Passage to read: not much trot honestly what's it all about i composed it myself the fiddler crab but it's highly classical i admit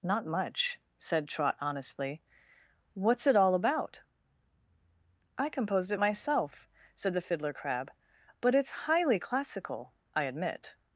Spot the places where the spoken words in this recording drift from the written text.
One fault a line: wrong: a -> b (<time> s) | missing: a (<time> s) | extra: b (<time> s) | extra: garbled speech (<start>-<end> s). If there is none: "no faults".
extra: said (1.0 s)
extra: said (6.9 s)